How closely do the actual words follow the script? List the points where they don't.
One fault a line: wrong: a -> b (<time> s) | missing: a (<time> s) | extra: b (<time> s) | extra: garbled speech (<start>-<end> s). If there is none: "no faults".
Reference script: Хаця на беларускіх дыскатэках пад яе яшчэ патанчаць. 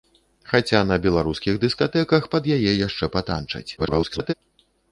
extra: garbled speech (3.8-4.3 s)